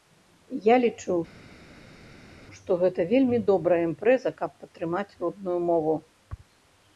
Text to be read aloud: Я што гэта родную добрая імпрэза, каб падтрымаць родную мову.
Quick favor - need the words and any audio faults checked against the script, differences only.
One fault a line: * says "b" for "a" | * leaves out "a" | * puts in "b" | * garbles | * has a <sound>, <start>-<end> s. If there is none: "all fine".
* puts in "лічу"
* says "вельмі" for "родную"